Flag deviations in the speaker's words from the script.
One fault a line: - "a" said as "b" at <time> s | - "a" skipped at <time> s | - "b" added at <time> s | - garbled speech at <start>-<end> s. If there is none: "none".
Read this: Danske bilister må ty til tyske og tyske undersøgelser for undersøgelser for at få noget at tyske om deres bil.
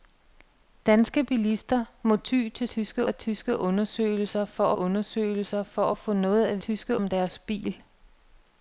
none